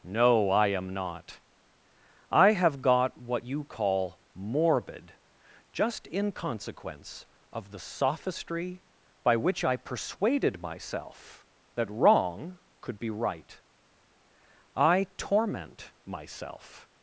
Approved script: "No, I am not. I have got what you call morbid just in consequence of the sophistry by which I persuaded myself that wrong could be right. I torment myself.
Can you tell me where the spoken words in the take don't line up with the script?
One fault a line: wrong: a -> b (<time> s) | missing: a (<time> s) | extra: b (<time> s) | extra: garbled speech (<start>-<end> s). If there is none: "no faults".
no faults